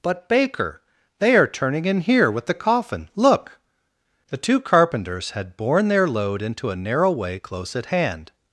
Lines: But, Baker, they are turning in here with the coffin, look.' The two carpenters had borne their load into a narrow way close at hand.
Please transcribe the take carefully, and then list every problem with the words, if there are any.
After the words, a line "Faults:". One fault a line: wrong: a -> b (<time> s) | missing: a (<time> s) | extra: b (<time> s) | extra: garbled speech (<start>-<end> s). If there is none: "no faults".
But, Baker, they are turning in here with the coffin, look.' The two carpenters had borne their load into a narrow way close at hand.
Faults:
no faults